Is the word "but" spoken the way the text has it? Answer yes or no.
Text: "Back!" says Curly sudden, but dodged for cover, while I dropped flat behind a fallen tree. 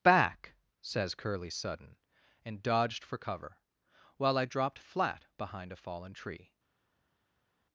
no